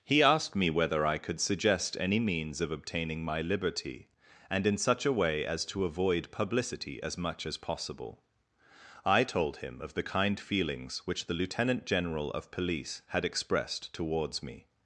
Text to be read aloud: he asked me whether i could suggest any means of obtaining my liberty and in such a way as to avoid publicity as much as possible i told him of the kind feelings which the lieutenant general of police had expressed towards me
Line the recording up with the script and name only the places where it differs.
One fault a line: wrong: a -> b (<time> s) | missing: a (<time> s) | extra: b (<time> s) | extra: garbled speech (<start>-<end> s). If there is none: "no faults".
no faults